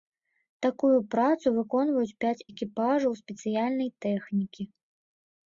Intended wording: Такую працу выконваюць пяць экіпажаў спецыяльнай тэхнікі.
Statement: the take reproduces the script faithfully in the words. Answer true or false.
true